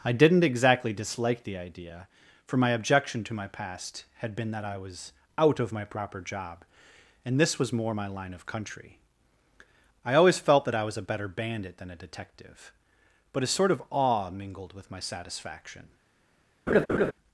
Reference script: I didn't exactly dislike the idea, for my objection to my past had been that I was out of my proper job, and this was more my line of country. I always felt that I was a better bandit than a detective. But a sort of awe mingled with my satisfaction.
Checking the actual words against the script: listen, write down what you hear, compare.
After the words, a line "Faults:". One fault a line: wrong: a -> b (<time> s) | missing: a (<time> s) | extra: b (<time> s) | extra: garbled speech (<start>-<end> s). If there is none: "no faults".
I didn't exactly dislike the idea, for my objection to my past had been that I was out of my proper job, and this was more my line of country. I always felt that I was a better bandit than a detective. But a sort of awe mingled with my satisfaction.
Faults:
no faults